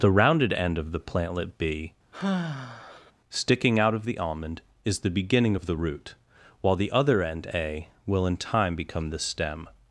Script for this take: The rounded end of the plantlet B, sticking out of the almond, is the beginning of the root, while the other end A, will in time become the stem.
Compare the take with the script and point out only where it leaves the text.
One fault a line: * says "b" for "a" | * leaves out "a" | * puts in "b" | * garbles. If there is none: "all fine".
all fine